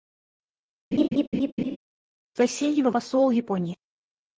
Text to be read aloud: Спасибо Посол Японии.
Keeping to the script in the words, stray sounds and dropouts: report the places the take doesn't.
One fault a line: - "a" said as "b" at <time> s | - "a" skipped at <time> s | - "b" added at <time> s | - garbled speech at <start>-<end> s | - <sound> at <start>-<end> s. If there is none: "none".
- laugh at 0.9-1.8 s